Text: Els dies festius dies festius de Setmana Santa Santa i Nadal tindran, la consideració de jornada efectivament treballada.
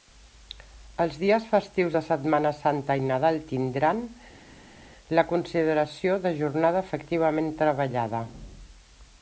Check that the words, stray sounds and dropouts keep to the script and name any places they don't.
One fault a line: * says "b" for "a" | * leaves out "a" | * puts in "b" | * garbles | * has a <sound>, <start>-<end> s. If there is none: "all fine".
* leaves out "dies festius"
* leaves out "Santa"